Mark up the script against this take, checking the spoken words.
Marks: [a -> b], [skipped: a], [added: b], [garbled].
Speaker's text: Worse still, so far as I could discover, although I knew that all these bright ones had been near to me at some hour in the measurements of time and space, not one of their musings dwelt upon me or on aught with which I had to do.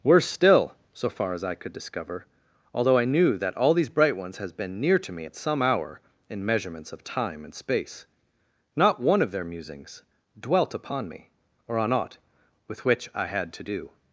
Worse still, so far as I could discover, although I knew that all these bright ones [had -> has] been near to me at some hour in [skipped: the] measurements of time and space, not one of their musings dwelt upon me or on aught with which I had to do.